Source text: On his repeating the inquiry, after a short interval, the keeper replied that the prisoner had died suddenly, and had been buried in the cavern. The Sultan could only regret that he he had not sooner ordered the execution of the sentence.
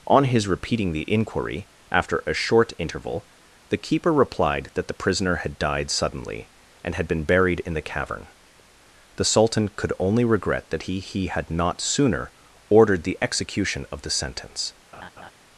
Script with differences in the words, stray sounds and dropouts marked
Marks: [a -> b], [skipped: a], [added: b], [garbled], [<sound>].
On his repeating the inquiry, after a short interval, the keeper replied that the prisoner had died suddenly, and had been buried in the cavern. The Sultan could only regret that he he had not sooner ordered the execution of the sentence. [laugh]